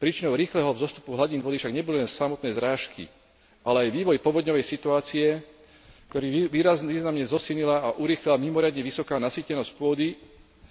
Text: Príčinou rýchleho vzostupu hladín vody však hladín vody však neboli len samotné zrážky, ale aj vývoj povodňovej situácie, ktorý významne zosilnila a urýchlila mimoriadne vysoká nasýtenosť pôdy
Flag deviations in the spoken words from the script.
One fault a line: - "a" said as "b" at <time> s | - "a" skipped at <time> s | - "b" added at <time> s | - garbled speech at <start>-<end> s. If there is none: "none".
- "hladín vody však" skipped at 1.8 s